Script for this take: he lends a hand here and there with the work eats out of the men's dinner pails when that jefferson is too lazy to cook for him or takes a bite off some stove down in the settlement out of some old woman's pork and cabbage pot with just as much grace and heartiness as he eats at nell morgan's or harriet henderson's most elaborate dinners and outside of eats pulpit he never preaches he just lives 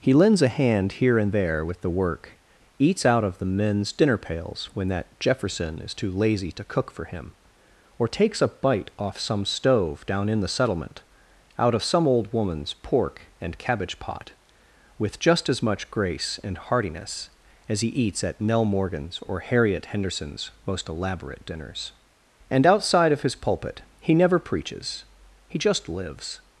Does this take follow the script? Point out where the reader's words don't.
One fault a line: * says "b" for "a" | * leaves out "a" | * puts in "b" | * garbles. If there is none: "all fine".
* says "his" for "eats"